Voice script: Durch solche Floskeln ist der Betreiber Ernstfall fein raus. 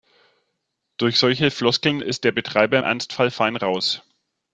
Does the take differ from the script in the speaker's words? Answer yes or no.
no